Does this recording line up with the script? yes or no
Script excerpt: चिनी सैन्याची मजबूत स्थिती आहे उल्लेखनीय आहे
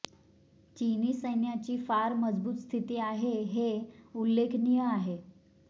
no